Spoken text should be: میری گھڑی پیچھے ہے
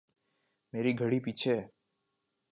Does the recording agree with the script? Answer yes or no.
yes